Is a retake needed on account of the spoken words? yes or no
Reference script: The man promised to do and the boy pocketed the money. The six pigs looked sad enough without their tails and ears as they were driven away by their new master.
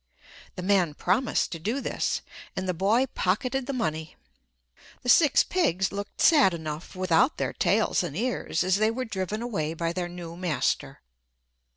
yes